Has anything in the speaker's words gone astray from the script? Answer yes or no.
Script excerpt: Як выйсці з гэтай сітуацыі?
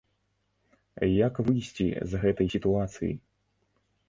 no